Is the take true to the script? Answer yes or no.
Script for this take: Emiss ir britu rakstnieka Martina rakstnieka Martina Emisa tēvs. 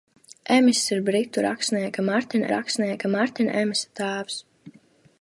yes